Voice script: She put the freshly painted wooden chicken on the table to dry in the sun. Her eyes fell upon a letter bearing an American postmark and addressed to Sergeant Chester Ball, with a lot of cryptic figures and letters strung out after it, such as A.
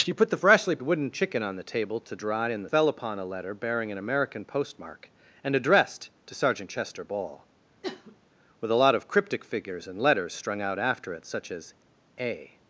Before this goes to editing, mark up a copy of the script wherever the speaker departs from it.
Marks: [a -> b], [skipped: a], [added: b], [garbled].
She put the freshly [skipped: painted] wooden chicken on the table to dry in the [skipped: sun. Her eyes] fell upon a letter bearing an American postmark and addressed to Sergeant Chester Ball, with a lot of cryptic figures and letters strung out after it, such as A.